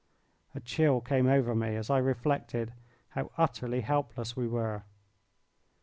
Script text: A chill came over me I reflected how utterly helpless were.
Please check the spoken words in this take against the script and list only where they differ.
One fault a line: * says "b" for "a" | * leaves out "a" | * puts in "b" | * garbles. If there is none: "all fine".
* puts in "as"
* puts in "we"